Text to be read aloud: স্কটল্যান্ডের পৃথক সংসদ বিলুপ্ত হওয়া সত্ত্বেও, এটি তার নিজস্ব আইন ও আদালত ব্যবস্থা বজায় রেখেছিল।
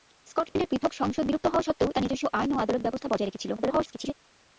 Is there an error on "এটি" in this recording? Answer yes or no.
yes